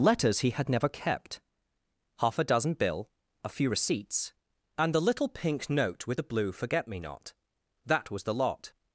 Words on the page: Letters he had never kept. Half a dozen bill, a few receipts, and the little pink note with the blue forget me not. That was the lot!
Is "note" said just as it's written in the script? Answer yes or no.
yes